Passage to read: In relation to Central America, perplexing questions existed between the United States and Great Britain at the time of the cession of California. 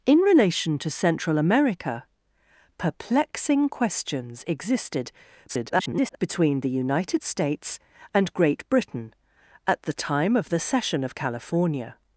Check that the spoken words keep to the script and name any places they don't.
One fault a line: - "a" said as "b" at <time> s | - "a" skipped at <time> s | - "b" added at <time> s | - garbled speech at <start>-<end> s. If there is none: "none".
- garbled speech at 5.5-6.2 s